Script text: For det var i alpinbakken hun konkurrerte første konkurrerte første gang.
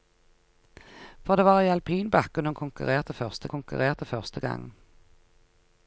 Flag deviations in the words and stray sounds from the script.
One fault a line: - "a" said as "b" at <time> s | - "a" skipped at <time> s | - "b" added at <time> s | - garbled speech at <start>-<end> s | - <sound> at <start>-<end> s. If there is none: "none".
none